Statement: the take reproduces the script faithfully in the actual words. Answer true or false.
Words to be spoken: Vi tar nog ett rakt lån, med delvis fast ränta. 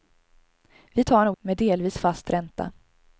false